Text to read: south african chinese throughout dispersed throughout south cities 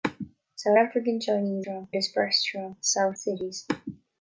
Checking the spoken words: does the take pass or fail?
pass